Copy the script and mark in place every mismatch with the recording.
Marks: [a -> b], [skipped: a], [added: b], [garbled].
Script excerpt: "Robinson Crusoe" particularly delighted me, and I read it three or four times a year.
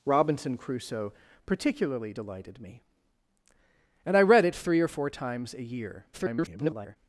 "Robinson Crusoe" particularly delighted me, and I read it three or four times a year. [garbled]